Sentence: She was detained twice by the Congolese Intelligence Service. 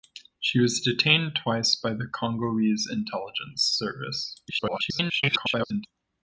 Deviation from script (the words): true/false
true